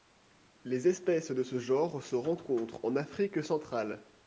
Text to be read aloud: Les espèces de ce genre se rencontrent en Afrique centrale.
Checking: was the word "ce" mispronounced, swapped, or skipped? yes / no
no